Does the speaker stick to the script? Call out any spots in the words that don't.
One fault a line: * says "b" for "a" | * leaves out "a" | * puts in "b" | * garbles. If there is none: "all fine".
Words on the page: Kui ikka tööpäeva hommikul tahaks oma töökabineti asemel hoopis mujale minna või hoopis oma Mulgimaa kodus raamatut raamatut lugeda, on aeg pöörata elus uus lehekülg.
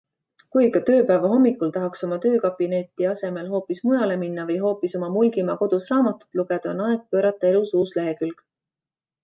* leaves out "raamatut"